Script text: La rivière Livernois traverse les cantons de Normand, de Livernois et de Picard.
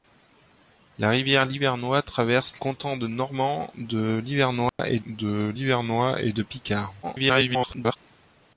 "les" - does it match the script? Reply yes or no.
no